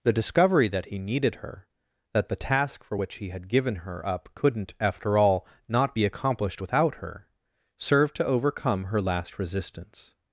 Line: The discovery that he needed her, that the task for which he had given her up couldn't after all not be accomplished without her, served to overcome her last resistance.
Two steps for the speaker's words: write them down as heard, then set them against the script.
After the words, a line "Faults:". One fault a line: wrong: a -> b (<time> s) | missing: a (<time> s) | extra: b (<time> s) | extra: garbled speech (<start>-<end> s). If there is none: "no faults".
The discovery that he needed her, that the task for which he had given her up couldn't after all not be accomplished without her, served to overcome her last resistance.
Faults:
no faults